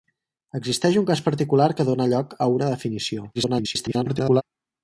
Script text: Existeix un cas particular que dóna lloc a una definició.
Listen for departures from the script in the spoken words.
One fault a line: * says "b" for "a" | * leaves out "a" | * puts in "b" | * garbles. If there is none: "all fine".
* garbles